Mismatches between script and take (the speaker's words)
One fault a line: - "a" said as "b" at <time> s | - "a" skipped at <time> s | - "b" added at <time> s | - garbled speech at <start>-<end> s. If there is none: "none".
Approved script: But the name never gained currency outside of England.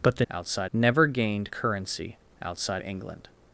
- "name" said as "outside" at 0.3 s
- "of" skipped at 2.8 s